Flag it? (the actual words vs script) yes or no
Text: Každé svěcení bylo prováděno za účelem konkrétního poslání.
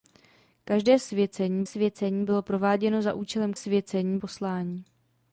yes